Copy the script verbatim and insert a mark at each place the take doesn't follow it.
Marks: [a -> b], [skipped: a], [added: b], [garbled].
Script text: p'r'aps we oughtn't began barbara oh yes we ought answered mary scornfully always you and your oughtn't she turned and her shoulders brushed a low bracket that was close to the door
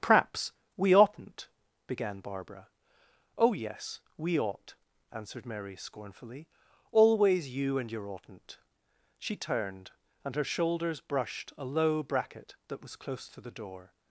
p'r'aps we oughtn't began barbara oh yes we ought answered mary scornfully always you and your oughtn't she turned and her shoulders brushed a low bracket that was close to the door